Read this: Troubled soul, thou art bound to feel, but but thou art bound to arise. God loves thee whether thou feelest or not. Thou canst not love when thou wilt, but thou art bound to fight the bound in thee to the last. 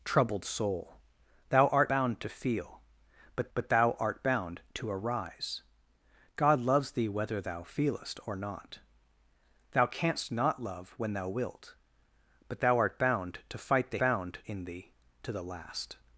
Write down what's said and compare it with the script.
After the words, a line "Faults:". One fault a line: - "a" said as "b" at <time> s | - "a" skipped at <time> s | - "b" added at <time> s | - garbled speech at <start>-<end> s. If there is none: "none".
Troubled soul, thou art bound to feel, but but thou art bound to arise. God loves thee whether thou feelest or not. Thou canst not love when thou wilt, but thou art bound to fight the bound in thee to the last.
Faults:
none